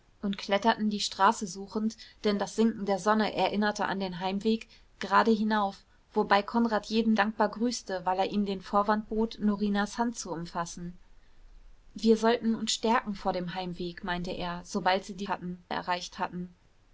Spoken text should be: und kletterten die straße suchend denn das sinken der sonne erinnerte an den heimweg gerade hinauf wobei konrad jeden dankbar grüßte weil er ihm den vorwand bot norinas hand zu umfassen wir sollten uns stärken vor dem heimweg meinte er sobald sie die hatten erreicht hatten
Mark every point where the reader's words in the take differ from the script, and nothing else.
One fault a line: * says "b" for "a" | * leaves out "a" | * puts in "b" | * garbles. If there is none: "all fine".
all fine